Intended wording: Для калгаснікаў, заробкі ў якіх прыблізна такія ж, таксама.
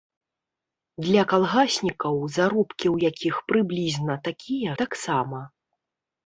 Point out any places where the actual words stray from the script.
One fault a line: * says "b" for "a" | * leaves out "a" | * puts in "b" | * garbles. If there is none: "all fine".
* leaves out "ж"